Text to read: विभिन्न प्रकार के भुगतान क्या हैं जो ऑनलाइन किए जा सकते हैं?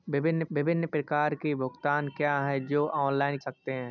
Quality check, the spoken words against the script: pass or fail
fail